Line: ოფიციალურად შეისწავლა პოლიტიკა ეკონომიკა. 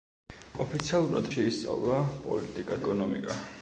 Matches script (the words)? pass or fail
pass